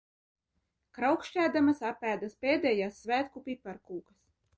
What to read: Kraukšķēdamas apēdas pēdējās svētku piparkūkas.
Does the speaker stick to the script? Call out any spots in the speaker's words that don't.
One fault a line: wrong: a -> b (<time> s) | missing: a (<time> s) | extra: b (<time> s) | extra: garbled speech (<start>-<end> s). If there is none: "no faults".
no faults